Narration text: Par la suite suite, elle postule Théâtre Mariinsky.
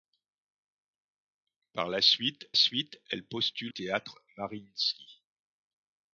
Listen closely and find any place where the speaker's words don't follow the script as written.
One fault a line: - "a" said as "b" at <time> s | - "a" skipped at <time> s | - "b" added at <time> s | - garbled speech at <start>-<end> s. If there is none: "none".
none